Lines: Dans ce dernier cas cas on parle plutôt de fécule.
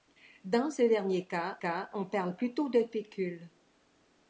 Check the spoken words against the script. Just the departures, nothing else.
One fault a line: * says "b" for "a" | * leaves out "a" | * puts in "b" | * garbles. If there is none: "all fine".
all fine